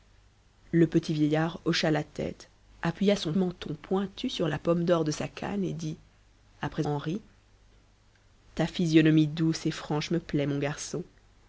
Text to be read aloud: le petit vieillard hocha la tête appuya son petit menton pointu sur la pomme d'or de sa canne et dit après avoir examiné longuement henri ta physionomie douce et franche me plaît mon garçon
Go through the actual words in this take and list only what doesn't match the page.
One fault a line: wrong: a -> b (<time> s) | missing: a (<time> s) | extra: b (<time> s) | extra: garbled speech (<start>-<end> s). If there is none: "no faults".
missing: petit (3.3 s)
missing: avoir examiné longuement (6.9 s)